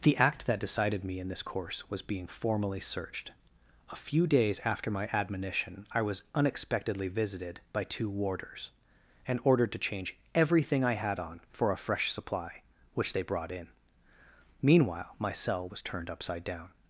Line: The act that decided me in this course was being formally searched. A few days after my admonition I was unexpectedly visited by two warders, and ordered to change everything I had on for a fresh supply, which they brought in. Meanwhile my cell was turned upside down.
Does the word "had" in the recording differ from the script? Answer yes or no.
no